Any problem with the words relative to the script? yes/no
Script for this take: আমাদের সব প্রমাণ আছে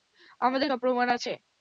no